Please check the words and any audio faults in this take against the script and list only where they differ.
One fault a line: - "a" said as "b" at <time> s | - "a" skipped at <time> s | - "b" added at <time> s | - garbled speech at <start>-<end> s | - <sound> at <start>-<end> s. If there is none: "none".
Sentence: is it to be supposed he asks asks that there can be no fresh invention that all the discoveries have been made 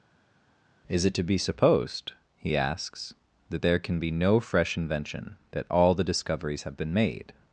- "asks" skipped at 3.2 s